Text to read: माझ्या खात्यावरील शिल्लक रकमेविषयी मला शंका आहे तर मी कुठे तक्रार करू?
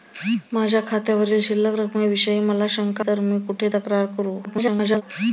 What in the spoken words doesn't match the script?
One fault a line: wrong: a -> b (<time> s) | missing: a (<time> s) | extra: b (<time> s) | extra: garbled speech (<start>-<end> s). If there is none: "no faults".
missing: आहे (3.0 s)
extra: garbled speech (4.4-5.0 s)